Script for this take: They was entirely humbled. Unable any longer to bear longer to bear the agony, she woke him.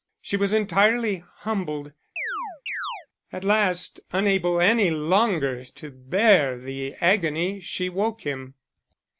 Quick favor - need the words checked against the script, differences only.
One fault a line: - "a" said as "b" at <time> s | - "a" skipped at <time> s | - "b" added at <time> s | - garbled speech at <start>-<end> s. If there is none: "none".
- "They" said as "She" at 0.2 s
- "At last" added at 3.3 s
- "longer to bear" skipped at 6.6 s